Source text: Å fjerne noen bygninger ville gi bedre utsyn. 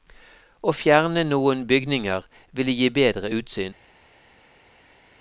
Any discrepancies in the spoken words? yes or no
no